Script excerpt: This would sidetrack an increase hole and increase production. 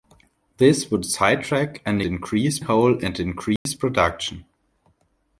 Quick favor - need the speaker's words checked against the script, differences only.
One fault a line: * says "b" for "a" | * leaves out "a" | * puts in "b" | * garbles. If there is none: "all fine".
all fine